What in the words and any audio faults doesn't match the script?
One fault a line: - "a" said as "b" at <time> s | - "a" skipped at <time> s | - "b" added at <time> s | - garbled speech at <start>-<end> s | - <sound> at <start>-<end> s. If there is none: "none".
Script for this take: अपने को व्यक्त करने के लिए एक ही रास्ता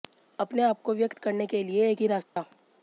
- "आप" added at 0.6 s
- dropout at 2.2-2.4 s